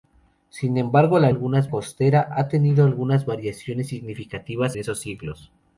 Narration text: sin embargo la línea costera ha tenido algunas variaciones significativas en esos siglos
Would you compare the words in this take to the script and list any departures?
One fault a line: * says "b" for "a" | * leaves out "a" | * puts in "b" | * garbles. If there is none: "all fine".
* says "algunas" for "línea"
* leaves out "en"